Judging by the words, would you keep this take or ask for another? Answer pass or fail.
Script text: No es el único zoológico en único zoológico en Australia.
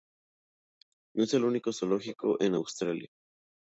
fail